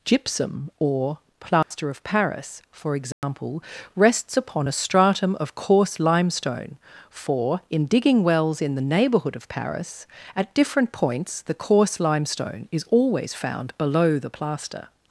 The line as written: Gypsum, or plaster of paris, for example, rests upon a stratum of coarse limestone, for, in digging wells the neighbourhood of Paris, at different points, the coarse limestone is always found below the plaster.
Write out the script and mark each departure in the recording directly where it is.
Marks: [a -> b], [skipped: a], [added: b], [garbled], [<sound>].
Gypsum, or plaster [dropout] of paris, for example, [dropout] rests upon a stratum of coarse limestone, for, in digging wells [added: in] the neighbourhood of Paris, at different points, the coarse limestone is always found below the plaster.